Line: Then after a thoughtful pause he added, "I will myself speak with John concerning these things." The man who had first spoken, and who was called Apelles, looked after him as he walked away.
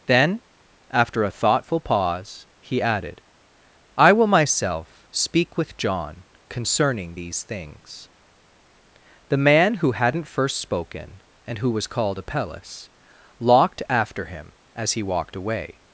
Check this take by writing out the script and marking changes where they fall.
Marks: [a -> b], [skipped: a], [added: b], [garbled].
Then after a thoughtful pause he added, "I will myself speak with John concerning these things." The man who [had -> hadn't] first spoken, and who was called Apelles, [looked -> locked] after him as he walked away.